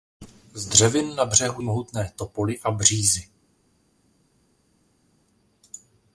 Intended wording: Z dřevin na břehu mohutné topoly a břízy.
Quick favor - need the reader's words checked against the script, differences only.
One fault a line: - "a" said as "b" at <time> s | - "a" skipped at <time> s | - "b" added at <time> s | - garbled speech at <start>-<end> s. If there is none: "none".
none